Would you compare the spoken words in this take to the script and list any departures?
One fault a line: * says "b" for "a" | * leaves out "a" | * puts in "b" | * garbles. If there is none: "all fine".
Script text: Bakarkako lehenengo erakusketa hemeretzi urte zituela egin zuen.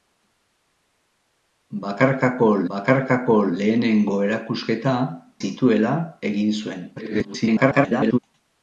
* puts in "bakarkako"
* leaves out "hemeretzi urte"
* garbles